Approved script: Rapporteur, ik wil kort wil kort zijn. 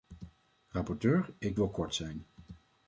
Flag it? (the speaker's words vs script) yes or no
yes